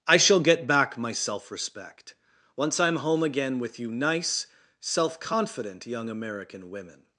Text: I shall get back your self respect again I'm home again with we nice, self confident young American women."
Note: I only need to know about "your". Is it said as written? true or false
false